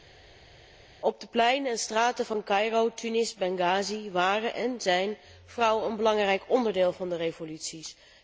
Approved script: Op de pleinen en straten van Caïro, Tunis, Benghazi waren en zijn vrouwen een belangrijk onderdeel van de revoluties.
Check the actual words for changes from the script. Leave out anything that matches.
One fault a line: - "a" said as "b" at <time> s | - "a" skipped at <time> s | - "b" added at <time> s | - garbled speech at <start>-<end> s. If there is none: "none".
none